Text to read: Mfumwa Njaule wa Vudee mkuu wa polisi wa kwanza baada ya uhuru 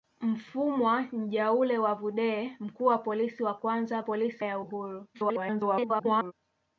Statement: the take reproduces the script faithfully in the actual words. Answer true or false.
false